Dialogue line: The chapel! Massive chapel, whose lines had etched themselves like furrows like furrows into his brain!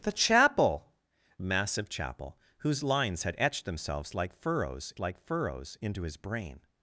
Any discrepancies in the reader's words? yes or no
no